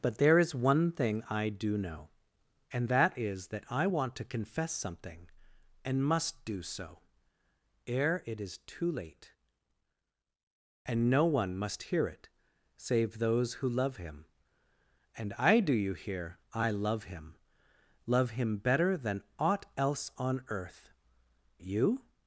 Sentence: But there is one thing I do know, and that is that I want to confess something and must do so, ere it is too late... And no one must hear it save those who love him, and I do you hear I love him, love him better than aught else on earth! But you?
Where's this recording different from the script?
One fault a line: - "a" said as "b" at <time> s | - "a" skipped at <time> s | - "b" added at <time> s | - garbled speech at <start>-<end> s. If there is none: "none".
- "But" skipped at 20.9 s